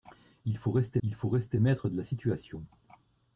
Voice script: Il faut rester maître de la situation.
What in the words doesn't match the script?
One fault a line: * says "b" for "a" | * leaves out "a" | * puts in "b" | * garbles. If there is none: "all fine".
* puts in "il faut rester"